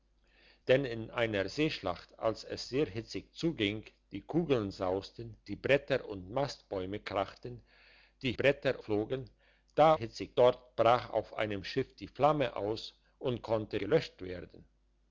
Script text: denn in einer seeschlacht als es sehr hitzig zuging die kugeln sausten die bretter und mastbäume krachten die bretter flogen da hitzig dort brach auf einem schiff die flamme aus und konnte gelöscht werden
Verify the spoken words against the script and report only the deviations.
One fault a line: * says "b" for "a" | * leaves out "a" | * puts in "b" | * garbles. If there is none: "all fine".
all fine